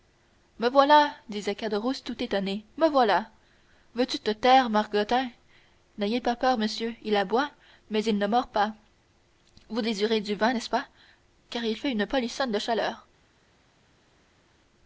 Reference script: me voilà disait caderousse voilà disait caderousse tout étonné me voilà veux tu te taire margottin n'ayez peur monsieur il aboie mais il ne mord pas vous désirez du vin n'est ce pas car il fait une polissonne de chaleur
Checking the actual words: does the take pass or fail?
fail